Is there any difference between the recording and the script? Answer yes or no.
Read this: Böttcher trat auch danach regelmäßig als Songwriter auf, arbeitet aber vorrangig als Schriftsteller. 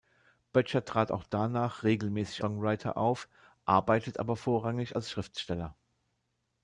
yes